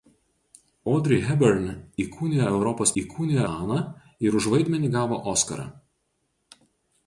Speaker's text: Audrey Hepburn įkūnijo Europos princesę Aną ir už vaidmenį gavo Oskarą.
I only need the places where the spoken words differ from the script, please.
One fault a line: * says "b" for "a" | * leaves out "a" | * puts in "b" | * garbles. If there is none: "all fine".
* says "įkūnijo" for "princesę"